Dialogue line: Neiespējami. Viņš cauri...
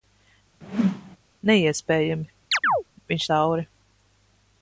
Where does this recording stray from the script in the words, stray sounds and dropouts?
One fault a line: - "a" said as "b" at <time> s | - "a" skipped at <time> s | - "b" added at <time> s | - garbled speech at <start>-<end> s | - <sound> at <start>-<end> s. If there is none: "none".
- whoosh at 0.6-1.2 s
- chirp at 2.5-2.8 s